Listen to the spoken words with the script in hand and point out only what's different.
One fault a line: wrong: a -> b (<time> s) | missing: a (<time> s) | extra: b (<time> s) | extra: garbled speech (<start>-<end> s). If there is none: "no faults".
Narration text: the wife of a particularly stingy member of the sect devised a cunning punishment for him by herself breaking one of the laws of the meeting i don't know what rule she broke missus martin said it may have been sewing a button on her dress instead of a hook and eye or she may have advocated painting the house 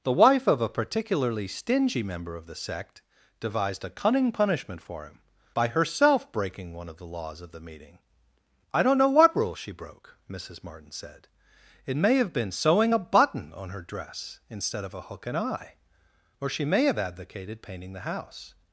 no faults